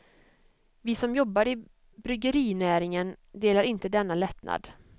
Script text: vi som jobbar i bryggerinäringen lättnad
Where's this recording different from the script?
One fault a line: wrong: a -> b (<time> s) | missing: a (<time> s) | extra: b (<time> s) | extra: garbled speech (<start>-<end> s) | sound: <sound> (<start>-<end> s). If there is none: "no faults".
extra: delar inte denna (3.3 s)